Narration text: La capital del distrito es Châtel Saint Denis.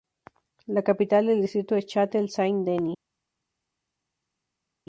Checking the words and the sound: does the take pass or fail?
pass